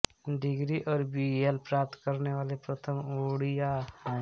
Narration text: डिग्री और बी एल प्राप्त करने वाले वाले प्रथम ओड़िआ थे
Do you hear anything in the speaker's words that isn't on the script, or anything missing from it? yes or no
yes